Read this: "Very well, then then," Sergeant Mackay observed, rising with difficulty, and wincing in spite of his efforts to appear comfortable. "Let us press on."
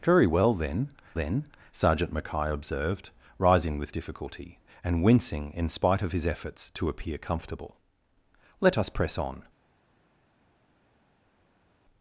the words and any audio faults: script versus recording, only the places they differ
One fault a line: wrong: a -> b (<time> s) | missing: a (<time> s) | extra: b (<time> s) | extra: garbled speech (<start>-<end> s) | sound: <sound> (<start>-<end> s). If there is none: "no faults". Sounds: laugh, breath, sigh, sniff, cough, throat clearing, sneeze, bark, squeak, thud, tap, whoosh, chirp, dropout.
no faults